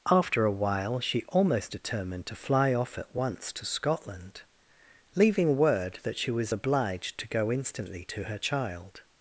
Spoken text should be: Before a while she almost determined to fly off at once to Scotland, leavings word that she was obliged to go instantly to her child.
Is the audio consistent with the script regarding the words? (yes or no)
no